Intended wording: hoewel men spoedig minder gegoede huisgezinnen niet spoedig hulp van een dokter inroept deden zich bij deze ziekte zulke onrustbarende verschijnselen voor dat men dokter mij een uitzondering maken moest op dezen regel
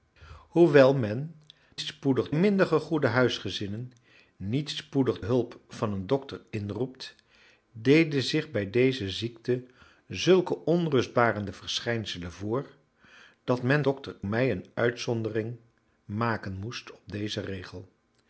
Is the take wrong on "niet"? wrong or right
right